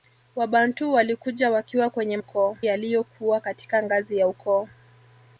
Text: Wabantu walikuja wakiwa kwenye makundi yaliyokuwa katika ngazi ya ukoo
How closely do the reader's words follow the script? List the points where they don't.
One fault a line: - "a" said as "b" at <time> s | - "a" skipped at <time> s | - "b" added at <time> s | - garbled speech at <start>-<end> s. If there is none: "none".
- "makundi" said as "ukoo" at 2.2 s